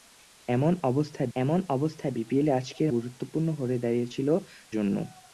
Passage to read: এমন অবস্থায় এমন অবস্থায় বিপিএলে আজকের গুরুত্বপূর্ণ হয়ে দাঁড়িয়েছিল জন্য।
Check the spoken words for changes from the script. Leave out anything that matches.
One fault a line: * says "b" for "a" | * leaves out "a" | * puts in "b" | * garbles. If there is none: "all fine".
all fine